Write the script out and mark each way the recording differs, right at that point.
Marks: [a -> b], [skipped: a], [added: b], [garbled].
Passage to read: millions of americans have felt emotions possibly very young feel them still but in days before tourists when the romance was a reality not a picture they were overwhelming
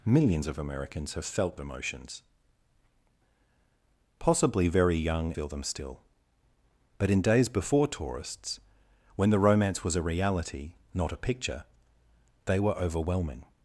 millions of americans have felt emotions possibly very young feel them still but in days before tourists when the romance was a reality not a picture they were overwhelming